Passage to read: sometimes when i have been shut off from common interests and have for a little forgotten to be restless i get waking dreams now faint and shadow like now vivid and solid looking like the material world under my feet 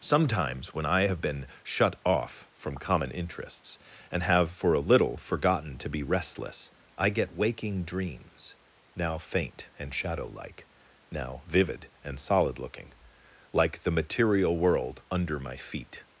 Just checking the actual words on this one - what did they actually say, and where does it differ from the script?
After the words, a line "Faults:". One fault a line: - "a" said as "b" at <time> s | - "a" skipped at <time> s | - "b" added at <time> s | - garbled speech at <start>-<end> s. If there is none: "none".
sometimes when i have been shut off from common interests and have for a little forgotten to be restless i get waking dreams now faint and shadow like now vivid and solid looking like the material world under my feet
Faults:
none